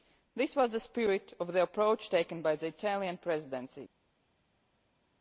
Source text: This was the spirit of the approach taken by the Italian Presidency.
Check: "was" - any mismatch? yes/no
no